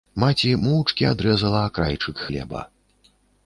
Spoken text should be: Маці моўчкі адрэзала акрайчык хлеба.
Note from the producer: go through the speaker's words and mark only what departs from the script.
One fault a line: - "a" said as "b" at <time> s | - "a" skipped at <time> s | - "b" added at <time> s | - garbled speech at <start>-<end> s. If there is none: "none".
none